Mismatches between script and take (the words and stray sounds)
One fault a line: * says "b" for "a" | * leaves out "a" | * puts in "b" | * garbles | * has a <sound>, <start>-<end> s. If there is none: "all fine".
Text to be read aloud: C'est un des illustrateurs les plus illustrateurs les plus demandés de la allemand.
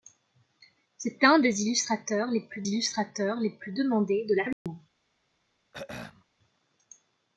* has a dropout, 4.5-4.7 s
* has a throat clearing, 5.7-6.2 s